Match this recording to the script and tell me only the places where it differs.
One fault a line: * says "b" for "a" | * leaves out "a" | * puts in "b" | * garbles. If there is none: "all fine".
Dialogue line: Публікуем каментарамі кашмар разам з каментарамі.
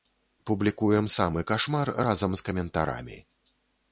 * says "самы" for "каментарамі"